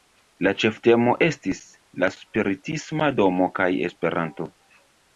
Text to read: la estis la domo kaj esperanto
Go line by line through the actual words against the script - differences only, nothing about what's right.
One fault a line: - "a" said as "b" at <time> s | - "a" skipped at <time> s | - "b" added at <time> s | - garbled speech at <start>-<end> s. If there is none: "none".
- "ĉeftemo" added at 0.6 s
- "spiritisma" added at 2.2 s